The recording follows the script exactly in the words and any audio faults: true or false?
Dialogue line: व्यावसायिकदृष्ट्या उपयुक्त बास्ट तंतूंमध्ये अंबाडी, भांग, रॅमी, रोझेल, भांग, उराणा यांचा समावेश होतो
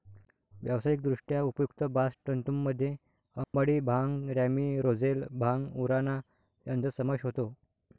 false